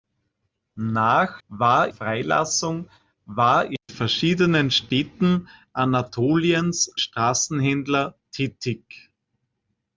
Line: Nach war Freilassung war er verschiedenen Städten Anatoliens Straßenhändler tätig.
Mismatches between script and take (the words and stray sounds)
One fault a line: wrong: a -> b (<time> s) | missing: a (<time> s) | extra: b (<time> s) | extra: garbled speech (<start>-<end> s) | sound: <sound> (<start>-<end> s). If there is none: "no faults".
no faults